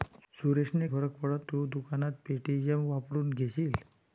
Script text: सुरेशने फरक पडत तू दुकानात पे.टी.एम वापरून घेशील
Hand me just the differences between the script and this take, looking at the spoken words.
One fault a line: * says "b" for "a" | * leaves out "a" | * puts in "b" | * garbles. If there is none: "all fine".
all fine